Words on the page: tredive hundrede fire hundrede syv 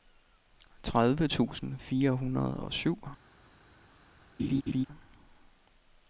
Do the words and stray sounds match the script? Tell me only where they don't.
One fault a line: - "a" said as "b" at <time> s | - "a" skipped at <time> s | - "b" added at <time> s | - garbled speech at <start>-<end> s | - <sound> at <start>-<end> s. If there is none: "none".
- "hundrede" said as "tusind" at 1.2 s
- "og" added at 2.6 s
- laugh at 4.4-4.9 s